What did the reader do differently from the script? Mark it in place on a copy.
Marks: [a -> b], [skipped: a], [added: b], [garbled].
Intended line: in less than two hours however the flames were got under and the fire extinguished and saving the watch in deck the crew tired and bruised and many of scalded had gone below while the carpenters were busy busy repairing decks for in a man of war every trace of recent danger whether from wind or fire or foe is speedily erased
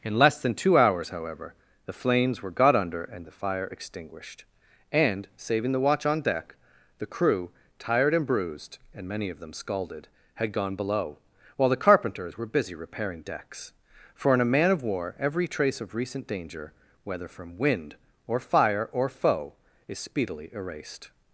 in less than two hours however the flames were got under and the fire extinguished and saving the watch [in -> on] deck the crew tired and bruised and many of [added: them] scalded had gone below while the carpenters were busy [skipped: busy] repairing decks for in a man of war every trace of recent danger whether from wind or fire or foe is speedily erased